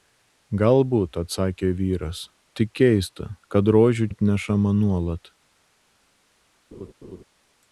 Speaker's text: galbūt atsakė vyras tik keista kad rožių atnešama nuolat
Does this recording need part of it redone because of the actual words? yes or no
no